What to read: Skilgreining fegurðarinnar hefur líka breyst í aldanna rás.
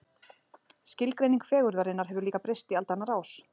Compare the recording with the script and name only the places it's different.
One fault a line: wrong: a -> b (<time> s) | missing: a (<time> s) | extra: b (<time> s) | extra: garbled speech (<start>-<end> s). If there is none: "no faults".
no faults